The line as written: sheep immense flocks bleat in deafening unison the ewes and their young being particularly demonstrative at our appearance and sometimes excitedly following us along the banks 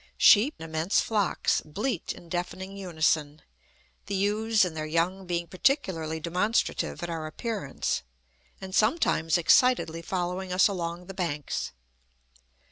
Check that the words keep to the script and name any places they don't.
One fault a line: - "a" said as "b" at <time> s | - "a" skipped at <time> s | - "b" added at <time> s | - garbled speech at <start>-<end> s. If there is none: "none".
none